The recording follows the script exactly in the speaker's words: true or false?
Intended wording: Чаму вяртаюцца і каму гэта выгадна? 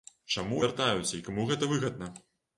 true